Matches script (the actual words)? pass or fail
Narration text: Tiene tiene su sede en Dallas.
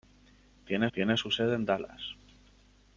pass